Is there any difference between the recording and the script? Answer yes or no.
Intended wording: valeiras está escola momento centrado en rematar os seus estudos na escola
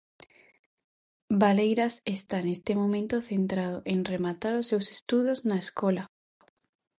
yes